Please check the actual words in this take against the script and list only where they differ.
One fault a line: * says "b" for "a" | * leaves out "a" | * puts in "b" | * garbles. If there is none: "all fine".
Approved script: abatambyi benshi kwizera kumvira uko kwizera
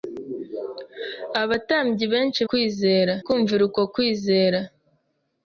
all fine